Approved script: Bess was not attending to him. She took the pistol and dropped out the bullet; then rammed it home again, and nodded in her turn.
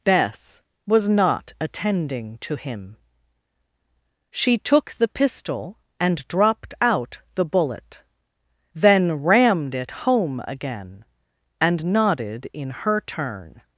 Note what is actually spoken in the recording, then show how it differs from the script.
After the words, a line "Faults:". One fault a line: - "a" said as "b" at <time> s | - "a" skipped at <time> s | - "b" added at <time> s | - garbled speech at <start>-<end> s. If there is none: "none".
Bess was not attending to him. She took the pistol and dropped out the bullet; then rammed it home again, and nodded in her turn.
Faults:
none